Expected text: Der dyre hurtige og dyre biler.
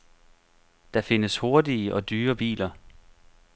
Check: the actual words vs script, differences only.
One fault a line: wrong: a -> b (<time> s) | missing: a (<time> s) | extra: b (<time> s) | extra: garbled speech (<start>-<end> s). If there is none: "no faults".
wrong: dyre -> findes (1.0 s)